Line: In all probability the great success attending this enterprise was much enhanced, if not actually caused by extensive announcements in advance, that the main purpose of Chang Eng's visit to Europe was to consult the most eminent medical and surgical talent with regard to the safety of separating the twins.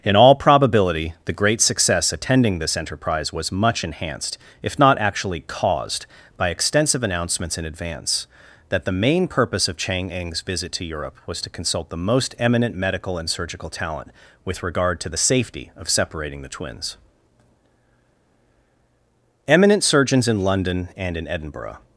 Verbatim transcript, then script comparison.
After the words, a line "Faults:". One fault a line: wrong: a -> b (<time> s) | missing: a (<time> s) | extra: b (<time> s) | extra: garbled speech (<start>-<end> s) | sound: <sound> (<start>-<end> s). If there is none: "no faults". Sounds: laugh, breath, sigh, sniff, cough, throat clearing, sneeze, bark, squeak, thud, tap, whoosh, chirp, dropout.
In all probability the great success attending this enterprise was much enhanced, if not actually caused by extensive announcements in advance, that the main purpose of Chang Eng's visit to Europe was to consult the most eminent medical and surgical talent with regard to the safety of separating the twins. Eminent surgeons in London and in Edinburgh
Faults:
extra: Eminent surgeons in London and in Edinburgh (19.5 s)